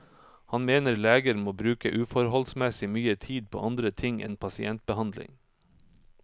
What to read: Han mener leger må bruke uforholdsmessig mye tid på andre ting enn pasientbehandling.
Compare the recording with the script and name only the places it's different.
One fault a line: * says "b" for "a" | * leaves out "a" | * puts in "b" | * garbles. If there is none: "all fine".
all fine